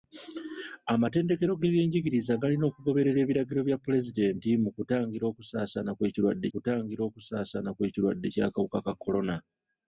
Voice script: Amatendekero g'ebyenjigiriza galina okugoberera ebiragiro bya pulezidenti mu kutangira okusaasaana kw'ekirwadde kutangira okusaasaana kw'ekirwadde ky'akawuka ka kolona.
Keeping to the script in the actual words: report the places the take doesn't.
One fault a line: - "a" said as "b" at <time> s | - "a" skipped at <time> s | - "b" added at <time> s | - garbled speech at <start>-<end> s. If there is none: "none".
none